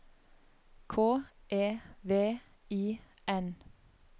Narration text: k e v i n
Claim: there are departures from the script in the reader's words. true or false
false